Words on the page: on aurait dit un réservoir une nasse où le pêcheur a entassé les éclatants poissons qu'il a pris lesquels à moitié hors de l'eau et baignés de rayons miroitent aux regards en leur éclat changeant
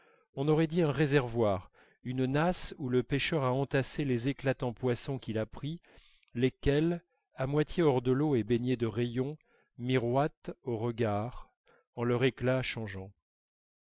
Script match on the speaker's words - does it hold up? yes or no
yes